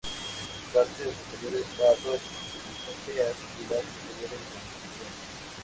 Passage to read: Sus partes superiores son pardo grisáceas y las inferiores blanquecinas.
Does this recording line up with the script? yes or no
no